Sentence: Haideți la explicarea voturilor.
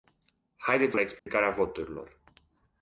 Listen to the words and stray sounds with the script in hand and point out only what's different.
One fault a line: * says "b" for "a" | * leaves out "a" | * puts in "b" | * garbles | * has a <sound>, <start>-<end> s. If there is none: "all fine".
* has a dropout, 1.2-1.3 s